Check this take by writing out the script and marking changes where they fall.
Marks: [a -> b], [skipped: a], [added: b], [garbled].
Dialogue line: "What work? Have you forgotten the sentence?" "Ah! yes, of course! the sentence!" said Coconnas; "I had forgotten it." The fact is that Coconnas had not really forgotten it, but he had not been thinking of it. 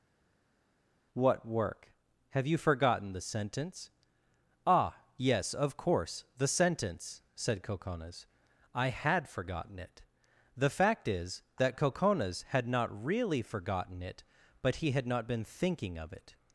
"What work? Have you forgotten the sentence?" "Ah! yes, of course! the sentence!" said Coconnas; "I had forgotten it." The fact is that Coconnas had not really forgotten it, but he had not been thinking of it.